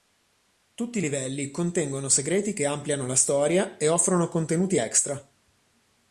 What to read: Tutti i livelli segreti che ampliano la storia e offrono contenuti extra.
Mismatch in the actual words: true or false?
true